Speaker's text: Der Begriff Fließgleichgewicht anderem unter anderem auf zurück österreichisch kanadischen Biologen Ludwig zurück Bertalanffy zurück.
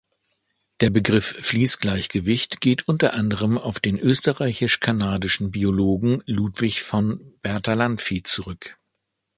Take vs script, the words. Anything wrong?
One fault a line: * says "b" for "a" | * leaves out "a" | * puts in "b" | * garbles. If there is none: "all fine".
* says "geht" for "anderem"
* says "den" for "zurück"
* says "von" for "zurück"